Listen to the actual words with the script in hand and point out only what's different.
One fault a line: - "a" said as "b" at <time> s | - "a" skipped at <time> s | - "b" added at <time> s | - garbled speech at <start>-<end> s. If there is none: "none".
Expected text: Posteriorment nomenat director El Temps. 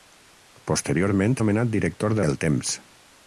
none